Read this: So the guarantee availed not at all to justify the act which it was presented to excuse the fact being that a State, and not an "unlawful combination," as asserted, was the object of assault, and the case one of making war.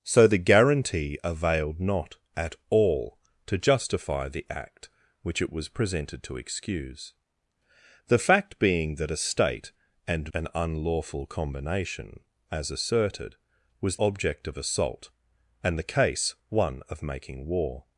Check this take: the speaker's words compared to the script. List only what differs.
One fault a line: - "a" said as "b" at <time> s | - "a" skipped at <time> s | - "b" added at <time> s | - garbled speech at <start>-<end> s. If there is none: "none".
- "not" skipped at 10.3 s
- "the" skipped at 14.0 s